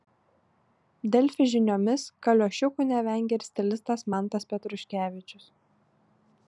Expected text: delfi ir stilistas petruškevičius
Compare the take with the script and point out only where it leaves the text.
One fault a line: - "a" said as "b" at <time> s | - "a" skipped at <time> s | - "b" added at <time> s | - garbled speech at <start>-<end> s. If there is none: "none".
- "žiniomis kaliošiukų nevengia" added at 1.5 s
- "mantas" added at 4.1 s